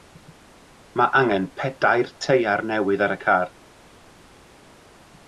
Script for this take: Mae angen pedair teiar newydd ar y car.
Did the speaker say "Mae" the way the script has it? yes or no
yes